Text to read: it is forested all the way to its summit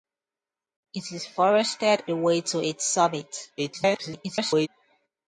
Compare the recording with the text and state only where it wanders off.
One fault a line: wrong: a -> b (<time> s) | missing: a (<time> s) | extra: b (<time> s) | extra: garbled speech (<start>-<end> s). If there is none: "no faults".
missing: all (2.0 s)
extra: garbled speech (3.6-4.7 s)